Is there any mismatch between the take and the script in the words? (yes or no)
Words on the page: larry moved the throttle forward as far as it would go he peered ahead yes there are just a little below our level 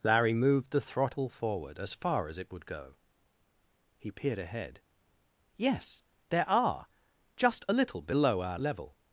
no